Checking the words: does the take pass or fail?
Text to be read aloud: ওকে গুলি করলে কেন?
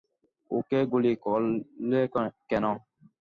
pass